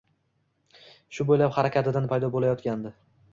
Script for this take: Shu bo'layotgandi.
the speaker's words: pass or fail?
fail